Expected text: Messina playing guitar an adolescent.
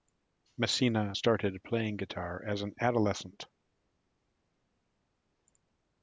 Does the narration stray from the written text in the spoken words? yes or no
yes